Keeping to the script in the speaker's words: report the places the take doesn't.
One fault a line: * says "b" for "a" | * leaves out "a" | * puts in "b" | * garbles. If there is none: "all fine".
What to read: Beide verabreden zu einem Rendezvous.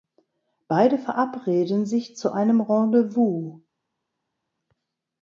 * puts in "sich"